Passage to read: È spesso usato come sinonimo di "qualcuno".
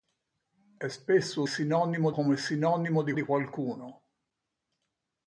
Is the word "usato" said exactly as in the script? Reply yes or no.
no